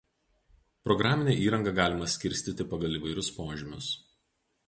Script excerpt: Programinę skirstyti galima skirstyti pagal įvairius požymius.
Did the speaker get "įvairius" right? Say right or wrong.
right